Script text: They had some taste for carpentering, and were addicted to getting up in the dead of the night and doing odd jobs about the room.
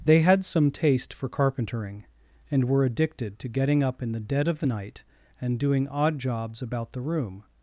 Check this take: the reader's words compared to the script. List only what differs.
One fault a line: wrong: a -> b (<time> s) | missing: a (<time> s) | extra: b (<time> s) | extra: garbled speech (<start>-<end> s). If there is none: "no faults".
no faults